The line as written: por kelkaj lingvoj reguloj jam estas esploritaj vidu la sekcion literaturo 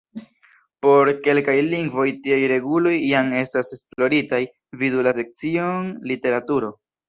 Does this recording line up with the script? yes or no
no